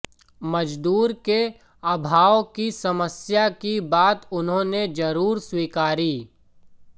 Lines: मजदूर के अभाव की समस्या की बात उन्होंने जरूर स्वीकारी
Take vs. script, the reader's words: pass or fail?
pass